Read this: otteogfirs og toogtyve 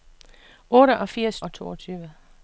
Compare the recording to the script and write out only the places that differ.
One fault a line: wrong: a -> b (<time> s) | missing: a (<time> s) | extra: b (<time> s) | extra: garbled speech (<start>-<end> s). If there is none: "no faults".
no faults